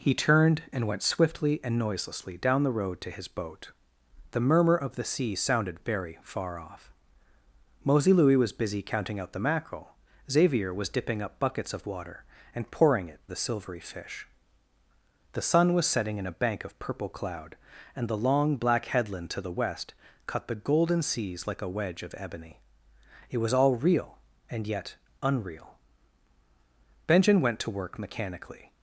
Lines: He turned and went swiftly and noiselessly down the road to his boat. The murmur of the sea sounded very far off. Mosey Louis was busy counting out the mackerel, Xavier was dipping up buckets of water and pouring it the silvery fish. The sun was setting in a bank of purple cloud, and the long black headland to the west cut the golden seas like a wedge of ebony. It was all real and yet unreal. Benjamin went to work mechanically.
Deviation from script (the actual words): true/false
false